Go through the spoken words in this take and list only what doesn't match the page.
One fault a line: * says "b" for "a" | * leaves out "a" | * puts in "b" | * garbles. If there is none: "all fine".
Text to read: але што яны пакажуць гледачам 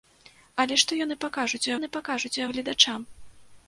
* puts in "яны пакажуць"